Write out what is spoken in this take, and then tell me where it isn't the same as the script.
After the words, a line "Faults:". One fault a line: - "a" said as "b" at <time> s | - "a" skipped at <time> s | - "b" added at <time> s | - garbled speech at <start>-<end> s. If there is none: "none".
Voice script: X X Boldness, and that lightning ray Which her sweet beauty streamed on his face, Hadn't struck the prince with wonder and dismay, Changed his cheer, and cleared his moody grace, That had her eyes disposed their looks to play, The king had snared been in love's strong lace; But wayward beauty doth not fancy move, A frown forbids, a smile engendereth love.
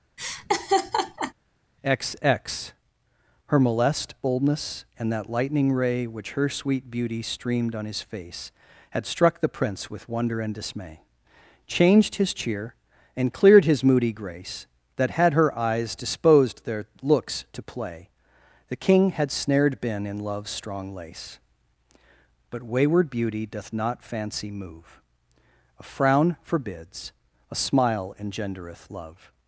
X X Her molest boldness, and that lightning ray Which her sweet beauty streamed on his face, Had struck the prince with wonder and dismay, Changed his cheer, and cleared his moody grace, That had her eyes disposed their looks to play, The king had snared been in love's strong lace; But wayward beauty doth not fancy move, A frown forbids, a smile engendereth love.
Faults:
- "Her molest" added at 3.5 s
- "Hadn't" said as "Had" at 8.9 s